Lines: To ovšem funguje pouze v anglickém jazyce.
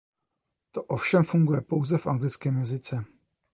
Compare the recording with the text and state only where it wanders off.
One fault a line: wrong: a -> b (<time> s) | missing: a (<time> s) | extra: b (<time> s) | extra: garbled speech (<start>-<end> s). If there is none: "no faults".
no faults